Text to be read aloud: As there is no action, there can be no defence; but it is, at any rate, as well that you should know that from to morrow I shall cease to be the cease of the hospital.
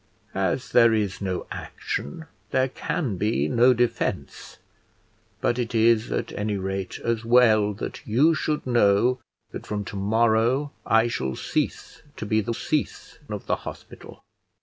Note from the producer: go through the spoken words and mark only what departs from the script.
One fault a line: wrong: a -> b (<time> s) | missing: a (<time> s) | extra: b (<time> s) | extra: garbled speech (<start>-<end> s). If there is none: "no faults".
no faults